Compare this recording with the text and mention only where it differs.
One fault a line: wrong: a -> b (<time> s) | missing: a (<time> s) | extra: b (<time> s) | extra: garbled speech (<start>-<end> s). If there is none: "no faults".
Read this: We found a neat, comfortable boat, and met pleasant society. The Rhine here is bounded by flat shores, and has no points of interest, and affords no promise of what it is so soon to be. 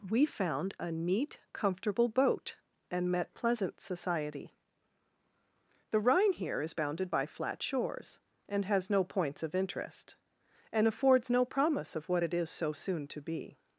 no faults